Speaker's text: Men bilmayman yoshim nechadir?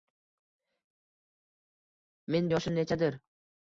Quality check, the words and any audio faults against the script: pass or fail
fail